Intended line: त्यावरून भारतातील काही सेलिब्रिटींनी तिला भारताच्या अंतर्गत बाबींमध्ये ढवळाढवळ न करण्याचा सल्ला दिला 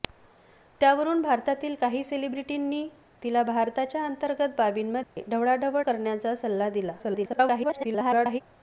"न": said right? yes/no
no